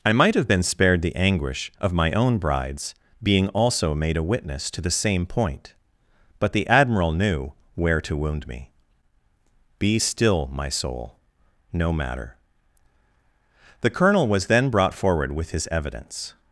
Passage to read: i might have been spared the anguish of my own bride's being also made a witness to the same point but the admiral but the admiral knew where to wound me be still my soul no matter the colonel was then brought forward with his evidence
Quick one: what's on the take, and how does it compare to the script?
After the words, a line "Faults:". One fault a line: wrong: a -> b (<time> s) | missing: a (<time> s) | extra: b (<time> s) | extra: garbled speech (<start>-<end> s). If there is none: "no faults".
i might have been spared the anguish of my own bride's being also made a witness to the same point but the admiral knew where to wound me be still my soul no matter the colonel was then brought forward with his evidence
Faults:
missing: but the admiral (7.1 s)